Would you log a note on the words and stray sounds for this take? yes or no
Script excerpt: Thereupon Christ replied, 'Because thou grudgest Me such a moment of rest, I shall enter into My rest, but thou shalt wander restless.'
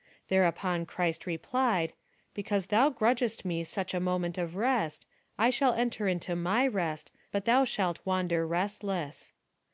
no